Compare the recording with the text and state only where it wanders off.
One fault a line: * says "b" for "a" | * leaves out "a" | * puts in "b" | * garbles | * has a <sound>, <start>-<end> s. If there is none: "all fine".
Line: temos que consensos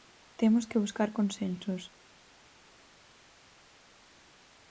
* puts in "buscar"